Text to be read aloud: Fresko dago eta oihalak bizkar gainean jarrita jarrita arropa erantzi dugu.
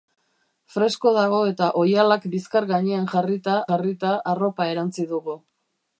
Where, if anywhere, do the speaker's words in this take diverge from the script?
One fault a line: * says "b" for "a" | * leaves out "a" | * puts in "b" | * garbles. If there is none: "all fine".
all fine